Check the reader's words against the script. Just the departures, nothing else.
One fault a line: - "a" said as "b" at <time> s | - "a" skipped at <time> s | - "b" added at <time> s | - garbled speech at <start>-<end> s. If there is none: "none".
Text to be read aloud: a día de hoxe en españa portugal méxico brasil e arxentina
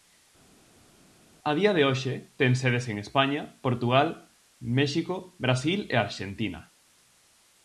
- "ten sedes" added at 2.4 s